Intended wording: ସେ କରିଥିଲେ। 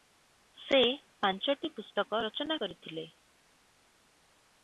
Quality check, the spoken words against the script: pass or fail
fail